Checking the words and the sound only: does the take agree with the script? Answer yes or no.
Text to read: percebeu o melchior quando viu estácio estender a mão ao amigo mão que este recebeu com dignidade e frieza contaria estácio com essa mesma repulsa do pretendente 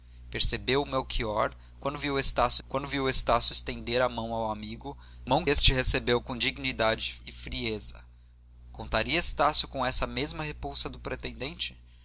no